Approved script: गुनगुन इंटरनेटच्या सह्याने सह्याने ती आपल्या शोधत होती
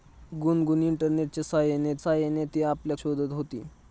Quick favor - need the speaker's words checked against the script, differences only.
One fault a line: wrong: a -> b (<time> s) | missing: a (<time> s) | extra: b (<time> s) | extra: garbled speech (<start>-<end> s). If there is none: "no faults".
no faults